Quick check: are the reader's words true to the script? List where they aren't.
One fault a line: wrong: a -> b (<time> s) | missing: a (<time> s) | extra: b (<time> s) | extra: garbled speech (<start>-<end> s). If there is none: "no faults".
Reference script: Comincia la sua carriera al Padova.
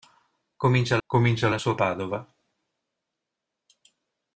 extra: comincia (1.0 s)
missing: carriera al (1.8 s)